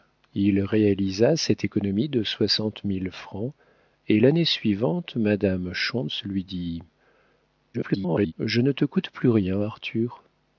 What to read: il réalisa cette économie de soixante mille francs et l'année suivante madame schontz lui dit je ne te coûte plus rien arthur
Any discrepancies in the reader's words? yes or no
yes